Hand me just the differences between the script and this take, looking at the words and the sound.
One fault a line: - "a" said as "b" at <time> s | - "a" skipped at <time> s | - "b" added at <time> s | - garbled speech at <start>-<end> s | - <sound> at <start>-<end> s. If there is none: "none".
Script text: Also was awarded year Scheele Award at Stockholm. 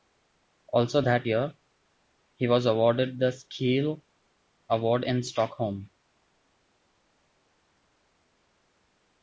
- "that year he" added at 1.0 s
- "year" said as "the" at 3.2 s
- "at" said as "in" at 5.0 s